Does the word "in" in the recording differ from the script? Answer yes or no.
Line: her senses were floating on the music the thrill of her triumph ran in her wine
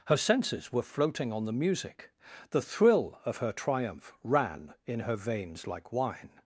no